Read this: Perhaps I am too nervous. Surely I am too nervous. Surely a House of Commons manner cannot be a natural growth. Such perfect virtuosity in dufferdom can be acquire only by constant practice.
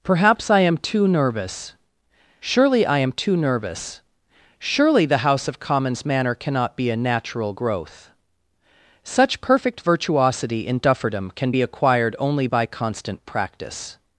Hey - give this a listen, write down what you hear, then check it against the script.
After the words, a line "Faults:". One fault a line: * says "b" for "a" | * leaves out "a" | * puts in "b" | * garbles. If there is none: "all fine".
Perhaps I am too nervous. Surely I am too nervous. Surely the House of Commons manner cannot be a natural growth. Such perfect virtuosity in dufferdom can be acquired only by constant practice.
Faults:
* says "the" for "a"
* says "acquired" for "acquire"